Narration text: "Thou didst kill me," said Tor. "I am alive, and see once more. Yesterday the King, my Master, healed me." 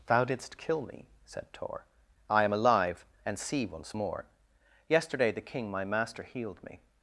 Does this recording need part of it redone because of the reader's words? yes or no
no